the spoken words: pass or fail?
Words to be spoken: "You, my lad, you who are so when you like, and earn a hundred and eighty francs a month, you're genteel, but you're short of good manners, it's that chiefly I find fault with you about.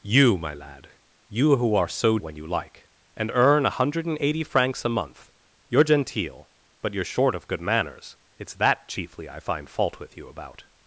pass